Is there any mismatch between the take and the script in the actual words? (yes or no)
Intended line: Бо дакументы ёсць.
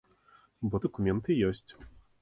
no